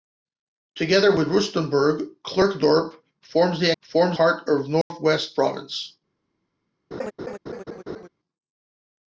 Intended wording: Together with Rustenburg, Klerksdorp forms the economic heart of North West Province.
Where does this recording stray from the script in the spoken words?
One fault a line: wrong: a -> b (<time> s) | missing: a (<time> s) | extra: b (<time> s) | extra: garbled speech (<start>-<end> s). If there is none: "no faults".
wrong: economic -> forms (3.8 s)